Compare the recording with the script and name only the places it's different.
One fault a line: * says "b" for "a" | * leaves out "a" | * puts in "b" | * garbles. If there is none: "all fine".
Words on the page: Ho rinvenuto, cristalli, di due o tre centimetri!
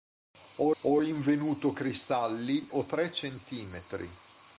* puts in "ho"
* leaves out "di due"